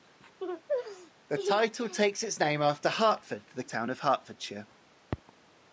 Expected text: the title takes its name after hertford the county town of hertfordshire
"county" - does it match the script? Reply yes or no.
no